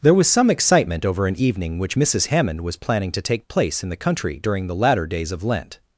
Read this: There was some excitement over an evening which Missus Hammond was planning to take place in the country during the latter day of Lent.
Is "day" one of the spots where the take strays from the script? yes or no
yes